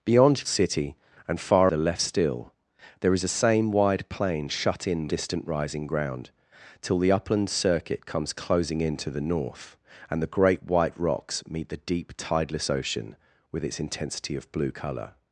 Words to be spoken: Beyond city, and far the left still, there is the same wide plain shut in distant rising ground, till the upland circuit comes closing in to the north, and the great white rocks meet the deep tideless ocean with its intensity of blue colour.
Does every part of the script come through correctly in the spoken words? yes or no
yes